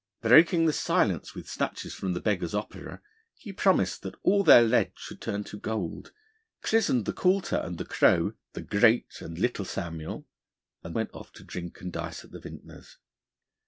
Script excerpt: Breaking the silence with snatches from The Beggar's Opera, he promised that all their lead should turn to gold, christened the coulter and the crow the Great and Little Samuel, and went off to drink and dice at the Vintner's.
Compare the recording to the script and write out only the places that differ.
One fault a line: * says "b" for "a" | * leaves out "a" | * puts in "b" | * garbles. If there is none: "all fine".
all fine